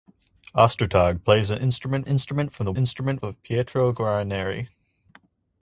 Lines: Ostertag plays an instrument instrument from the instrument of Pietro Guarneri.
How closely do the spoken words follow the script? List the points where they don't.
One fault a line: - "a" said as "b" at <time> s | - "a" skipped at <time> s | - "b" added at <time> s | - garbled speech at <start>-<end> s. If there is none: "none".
none